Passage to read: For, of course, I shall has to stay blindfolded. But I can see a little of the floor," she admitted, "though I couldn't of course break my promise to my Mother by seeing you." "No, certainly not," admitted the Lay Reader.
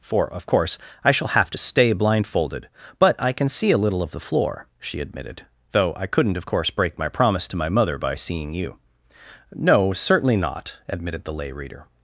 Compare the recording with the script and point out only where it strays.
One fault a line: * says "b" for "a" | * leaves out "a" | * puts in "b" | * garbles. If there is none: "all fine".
* says "have" for "has"